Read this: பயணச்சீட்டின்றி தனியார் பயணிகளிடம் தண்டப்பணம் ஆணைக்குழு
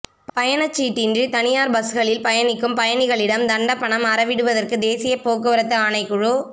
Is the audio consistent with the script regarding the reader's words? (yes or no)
no